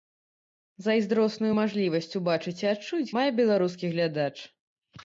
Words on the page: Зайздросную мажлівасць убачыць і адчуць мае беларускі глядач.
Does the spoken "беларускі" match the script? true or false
true